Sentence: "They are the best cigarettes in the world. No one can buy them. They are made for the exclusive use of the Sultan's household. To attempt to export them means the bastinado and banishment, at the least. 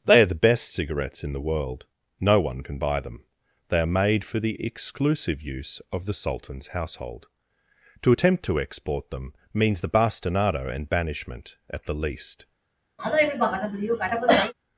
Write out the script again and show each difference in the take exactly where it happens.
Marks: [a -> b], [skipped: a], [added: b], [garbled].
"They are the best cigarettes in the world. No one can buy them. They are made for the exclusive use of the Sultan's household. To attempt to export them means the bastinado and banishment, at the least.